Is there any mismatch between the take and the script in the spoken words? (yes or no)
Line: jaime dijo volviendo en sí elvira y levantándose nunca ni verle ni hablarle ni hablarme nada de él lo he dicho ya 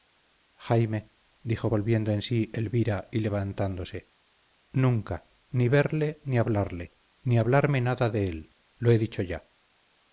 no